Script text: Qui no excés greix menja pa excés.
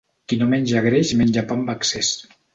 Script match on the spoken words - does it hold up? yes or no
no